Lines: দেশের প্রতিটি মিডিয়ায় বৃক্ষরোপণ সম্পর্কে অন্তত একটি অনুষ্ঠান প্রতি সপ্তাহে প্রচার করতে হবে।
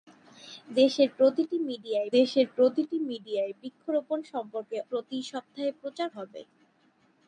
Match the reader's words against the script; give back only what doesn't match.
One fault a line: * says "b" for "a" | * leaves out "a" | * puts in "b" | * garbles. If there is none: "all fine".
* says "দেশের প্রতিটি মিডিয়ায় বৃক্ষরোপণ সম্পর্কে" for "বৃক্ষরোপণ সম্পর্কে অন্তত একটি অনুষ্ঠান"
* leaves out "করতে"